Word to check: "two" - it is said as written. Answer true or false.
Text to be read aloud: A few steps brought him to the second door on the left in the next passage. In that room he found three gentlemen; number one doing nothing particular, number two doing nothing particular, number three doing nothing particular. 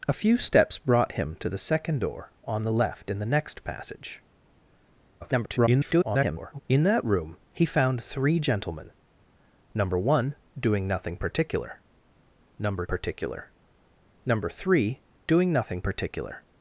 false